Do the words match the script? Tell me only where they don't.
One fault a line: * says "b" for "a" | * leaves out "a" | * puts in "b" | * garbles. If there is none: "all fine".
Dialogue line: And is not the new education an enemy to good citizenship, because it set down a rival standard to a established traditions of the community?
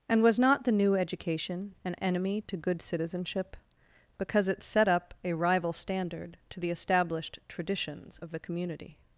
* says "was" for "is"
* says "up" for "down"
* says "the" for "a"